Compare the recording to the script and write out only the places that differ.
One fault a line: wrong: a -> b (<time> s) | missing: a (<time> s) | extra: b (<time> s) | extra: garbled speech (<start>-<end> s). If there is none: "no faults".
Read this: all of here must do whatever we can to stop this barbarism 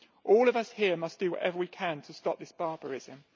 extra: us (0.6 s)